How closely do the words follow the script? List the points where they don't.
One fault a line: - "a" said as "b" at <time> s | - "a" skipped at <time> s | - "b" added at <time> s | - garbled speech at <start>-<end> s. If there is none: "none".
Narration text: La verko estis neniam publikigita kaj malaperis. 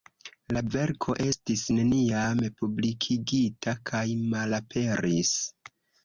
none